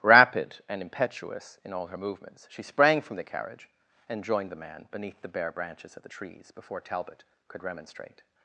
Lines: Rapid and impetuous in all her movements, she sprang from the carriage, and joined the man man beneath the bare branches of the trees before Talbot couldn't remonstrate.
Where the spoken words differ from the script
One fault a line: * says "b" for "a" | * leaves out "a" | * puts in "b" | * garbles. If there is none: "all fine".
* leaves out "man"
* says "could" for "couldn't"